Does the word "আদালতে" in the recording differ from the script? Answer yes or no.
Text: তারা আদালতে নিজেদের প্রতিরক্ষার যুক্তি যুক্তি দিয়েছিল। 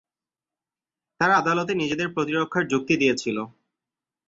no